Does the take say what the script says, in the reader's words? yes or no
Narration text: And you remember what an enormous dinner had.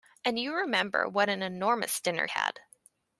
yes